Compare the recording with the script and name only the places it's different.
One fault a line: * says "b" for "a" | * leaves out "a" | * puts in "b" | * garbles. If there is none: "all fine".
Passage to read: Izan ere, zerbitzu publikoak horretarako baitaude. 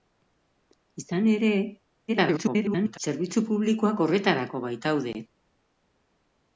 * garbles